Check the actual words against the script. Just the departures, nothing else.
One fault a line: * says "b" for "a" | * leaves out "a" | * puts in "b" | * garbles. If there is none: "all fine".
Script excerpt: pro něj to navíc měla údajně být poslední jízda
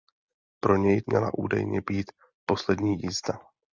* leaves out "to navíc"